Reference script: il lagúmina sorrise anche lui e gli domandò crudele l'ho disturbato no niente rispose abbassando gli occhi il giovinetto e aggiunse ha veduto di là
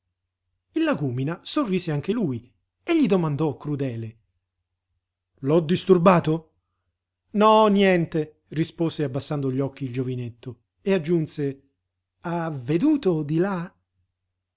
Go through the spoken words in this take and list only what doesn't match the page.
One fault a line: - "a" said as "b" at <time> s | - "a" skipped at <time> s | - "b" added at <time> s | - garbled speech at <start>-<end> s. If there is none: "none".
none